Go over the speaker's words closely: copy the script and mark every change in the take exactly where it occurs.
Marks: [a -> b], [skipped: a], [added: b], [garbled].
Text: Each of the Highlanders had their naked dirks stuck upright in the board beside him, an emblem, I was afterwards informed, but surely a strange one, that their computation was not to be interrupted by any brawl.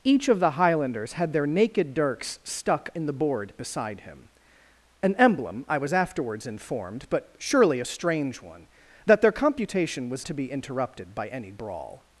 Each of the Highlanders had their naked dirks stuck [skipped: upright] in the board beside him, an emblem, I was afterwards informed, but surely a strange one, that their computation was [skipped: not] to be interrupted by any brawl.